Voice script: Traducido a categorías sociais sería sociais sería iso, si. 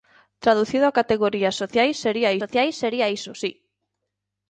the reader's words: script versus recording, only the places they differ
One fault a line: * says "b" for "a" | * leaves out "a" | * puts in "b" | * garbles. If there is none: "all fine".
all fine